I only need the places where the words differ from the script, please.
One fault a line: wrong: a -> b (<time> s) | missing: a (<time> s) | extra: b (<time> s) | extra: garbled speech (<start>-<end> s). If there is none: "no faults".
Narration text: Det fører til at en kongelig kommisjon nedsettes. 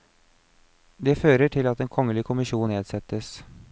no faults